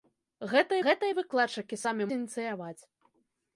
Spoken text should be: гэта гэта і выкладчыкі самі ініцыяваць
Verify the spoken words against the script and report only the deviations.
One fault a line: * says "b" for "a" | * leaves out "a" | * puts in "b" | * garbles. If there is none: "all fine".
all fine